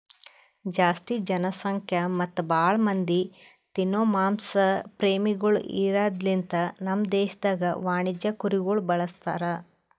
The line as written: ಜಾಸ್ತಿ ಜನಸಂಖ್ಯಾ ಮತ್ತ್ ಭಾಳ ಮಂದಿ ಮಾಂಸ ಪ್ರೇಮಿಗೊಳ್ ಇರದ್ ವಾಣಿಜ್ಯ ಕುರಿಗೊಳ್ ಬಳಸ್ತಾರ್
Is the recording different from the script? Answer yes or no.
yes